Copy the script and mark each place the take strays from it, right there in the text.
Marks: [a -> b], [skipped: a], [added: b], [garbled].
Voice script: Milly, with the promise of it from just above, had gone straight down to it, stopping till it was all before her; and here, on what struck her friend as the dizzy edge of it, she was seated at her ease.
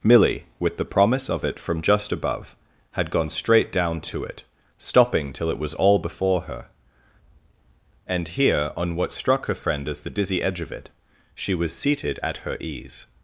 Milly, with the promise of it from just above, had gone straight down to it, stopping till it was all before her; and here, on what struck her friend as the dizzy edge of it, she was seated at her ease.